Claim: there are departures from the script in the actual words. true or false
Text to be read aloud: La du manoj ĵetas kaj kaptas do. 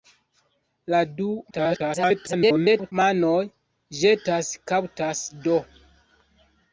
true